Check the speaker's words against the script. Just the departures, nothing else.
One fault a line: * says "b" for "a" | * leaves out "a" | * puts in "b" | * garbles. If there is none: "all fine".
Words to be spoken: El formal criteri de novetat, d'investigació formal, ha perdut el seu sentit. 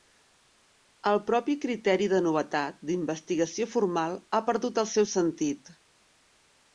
* says "propi" for "formal"